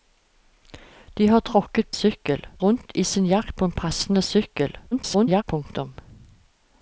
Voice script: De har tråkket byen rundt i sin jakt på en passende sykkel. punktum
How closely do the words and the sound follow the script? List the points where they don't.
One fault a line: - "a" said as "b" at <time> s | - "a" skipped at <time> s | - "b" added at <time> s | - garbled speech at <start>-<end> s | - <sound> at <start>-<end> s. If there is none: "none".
- "byen" said as "sykkel" at 1.9 s
- garbled speech at 4.9-5.4 s